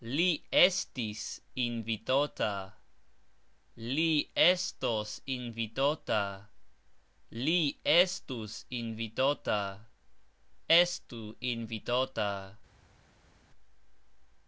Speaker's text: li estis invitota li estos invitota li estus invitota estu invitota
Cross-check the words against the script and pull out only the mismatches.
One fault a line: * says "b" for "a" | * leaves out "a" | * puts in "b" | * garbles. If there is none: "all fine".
all fine